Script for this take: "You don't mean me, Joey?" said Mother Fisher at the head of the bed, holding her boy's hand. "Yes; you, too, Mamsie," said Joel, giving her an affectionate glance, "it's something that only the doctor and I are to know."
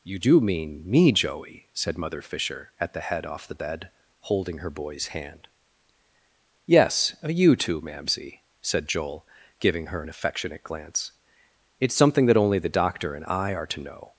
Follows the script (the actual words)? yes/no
no